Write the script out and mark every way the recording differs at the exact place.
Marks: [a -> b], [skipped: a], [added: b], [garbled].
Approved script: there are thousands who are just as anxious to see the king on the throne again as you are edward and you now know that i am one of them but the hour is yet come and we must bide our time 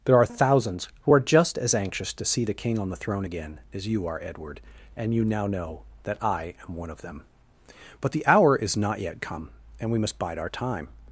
there are thousands who are just as anxious to see the king on the throne again as you are edward and you now know that i am one of them but the hour is [added: not] yet come and we must bide our time